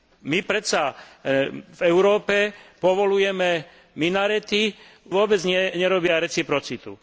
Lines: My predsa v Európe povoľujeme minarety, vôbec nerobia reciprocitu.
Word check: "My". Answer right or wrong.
right